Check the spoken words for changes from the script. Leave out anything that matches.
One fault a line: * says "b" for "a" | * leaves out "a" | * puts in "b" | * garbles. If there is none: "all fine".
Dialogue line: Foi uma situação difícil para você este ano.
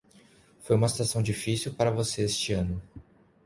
all fine